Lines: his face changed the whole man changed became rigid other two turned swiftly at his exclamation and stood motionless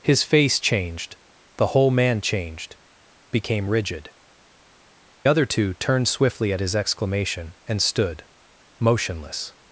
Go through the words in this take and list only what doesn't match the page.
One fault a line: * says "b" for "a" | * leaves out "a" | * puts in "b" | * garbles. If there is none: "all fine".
all fine